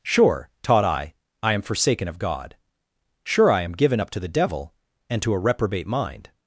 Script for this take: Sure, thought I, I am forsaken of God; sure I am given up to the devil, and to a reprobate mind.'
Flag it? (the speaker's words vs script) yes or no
yes